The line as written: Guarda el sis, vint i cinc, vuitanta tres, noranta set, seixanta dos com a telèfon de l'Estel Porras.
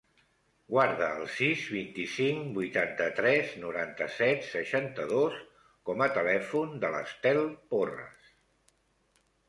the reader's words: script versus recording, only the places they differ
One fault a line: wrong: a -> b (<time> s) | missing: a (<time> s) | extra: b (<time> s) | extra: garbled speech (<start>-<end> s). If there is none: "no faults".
no faults